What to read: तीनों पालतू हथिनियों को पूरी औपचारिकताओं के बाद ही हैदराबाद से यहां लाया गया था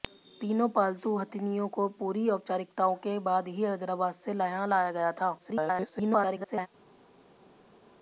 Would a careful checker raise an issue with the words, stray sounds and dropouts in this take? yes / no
yes